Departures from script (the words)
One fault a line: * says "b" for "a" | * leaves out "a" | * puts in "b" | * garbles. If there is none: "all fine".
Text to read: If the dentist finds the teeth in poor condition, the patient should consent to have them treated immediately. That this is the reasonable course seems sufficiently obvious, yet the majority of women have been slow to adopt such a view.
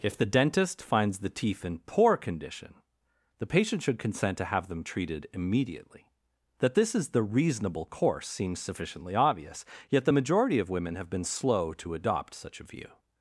all fine